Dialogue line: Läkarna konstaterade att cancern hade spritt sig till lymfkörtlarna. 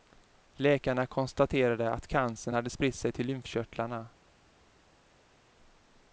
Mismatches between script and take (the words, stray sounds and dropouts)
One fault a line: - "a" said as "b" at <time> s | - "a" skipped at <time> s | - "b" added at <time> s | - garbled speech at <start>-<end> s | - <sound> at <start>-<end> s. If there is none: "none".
none